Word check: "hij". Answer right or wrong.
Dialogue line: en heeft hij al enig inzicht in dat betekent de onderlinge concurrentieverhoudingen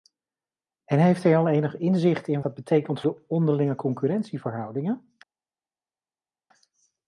right